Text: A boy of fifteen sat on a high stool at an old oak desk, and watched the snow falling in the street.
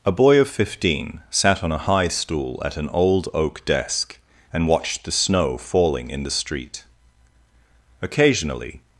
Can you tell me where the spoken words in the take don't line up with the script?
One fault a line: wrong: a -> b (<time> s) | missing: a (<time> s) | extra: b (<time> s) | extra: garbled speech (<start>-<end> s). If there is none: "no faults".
extra: Occasionally (8.0 s)